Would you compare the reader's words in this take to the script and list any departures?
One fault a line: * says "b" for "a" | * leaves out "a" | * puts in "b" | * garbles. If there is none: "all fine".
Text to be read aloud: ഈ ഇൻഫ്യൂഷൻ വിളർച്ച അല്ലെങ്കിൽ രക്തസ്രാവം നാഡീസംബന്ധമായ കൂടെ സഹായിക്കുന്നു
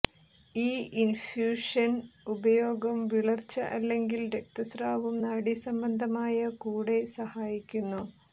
* puts in "ഉപയോഗം"